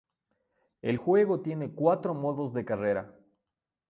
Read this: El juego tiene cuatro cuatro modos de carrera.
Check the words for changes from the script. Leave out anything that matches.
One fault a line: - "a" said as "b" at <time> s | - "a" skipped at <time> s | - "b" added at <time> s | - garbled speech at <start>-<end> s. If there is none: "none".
- "cuatro" skipped at 2.1 s